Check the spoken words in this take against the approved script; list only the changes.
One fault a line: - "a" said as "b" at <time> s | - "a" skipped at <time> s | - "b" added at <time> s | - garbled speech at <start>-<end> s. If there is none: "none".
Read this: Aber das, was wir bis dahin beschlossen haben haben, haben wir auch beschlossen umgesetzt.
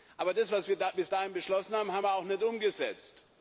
- "haben" skipped at 2.0 s
- "beschlossen" said as "nicht" at 2.2 s